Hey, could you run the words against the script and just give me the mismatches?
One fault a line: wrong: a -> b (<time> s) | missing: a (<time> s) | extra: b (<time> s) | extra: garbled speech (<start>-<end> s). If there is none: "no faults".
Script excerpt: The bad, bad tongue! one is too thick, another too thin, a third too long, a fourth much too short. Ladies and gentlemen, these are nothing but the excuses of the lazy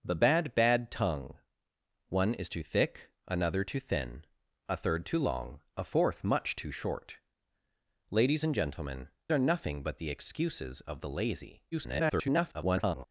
missing: these (9.1 s)
extra: garbled speech (11.7-13.0 s)